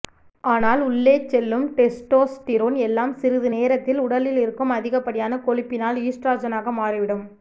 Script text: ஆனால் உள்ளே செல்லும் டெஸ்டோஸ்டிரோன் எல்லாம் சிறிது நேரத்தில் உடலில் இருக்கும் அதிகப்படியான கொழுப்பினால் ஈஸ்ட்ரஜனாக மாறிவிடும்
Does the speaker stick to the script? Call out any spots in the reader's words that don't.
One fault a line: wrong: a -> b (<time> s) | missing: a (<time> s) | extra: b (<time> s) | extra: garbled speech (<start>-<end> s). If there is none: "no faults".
no faults